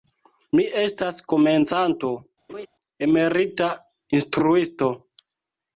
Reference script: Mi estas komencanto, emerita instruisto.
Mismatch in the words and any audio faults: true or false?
true